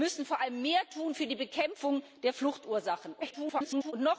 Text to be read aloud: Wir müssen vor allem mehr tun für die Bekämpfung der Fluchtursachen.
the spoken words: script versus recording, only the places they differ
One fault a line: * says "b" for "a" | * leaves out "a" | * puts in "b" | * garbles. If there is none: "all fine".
* garbles